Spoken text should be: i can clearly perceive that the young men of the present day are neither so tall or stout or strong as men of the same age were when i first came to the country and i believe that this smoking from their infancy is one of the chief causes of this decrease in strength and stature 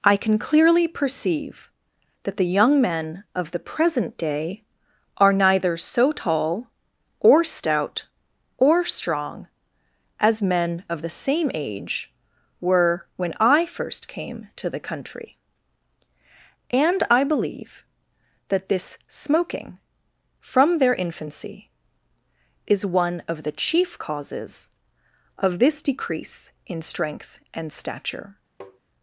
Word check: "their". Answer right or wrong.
right